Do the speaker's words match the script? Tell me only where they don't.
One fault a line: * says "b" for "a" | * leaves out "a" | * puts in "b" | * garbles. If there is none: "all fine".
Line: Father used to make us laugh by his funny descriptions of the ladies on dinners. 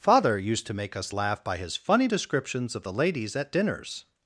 * says "at" for "on"